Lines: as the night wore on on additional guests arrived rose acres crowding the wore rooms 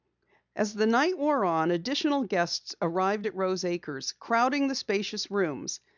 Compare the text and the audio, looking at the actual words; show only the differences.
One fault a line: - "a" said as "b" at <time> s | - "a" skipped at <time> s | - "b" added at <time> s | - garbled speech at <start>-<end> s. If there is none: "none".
- "on" skipped at 1.7 s
- "at" added at 3.3 s
- "wore" said as "spacious" at 4.8 s